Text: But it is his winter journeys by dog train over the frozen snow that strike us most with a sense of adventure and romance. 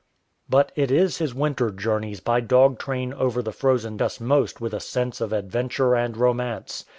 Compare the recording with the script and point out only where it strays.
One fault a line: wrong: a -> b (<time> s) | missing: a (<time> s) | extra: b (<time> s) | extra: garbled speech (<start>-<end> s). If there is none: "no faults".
missing: snow that strike (4.0 s)